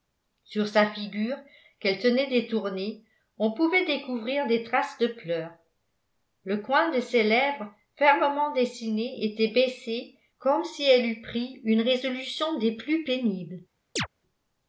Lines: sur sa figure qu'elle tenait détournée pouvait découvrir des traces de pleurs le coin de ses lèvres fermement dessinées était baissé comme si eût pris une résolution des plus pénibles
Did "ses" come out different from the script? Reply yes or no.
no